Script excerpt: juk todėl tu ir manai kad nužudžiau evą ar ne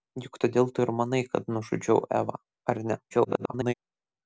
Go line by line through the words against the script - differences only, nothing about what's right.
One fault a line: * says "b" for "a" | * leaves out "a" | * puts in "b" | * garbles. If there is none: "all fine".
* garbles